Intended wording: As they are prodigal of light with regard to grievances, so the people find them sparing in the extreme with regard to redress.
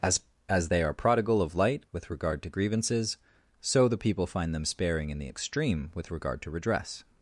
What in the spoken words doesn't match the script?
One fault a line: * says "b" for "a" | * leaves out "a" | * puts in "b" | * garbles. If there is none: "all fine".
* puts in "as"